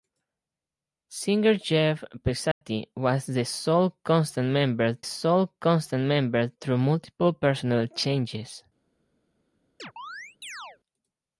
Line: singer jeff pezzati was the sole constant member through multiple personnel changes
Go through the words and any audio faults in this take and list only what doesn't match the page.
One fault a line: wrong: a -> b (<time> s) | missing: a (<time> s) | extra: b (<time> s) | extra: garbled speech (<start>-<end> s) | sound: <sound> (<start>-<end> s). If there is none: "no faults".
sound: dropout (2.5-2.6 s)
extra: sole constant member (5.0 s)
sound: chirp (9.8-10.8 s)